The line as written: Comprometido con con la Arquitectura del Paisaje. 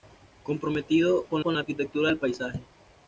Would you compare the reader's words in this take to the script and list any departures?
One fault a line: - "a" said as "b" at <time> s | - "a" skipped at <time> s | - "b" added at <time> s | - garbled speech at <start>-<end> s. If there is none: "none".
none